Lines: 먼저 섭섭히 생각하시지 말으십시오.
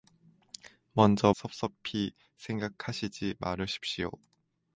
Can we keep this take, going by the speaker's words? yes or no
yes